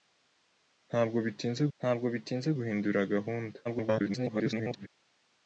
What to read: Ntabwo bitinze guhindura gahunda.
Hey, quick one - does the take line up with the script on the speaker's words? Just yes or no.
no